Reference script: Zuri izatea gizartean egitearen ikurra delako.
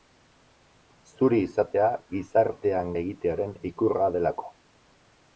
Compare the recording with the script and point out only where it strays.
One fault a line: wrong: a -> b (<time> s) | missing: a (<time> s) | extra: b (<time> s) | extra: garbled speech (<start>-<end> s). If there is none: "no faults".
no faults